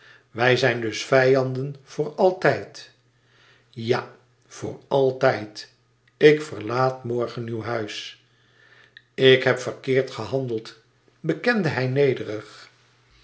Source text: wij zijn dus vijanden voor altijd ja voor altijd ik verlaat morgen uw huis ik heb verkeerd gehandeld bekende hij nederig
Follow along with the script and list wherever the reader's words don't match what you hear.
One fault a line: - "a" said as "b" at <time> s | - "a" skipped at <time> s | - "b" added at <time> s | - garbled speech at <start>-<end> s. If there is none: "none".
none